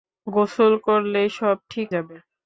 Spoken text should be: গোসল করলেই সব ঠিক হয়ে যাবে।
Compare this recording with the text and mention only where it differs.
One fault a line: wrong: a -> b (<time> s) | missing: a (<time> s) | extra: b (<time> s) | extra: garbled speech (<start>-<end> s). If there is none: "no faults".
missing: হয়ে (1.9 s)